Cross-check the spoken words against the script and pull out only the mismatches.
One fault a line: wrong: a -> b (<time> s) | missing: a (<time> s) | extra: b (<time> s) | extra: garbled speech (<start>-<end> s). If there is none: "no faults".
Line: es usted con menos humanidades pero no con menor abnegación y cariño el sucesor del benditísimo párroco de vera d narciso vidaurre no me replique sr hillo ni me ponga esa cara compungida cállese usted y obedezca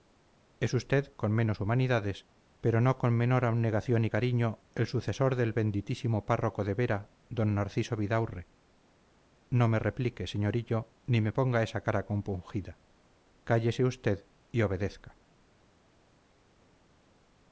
no faults